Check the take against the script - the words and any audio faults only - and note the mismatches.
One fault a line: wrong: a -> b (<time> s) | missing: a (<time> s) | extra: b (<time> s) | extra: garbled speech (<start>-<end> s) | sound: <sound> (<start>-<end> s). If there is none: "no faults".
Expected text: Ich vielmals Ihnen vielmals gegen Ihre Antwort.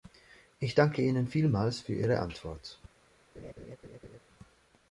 wrong: vielmals -> danke (0.7 s)
wrong: gegen -> für (1.8 s)
sound: laugh (3.3-4.2 s)